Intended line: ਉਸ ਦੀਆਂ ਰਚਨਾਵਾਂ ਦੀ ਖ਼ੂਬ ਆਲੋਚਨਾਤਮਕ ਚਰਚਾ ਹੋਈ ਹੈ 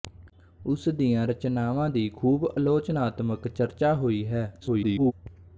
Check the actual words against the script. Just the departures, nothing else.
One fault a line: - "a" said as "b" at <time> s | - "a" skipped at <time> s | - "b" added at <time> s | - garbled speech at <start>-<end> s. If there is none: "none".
- garbled speech at 4.6-5.1 s